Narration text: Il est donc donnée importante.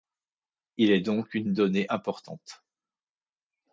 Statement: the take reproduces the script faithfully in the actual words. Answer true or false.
false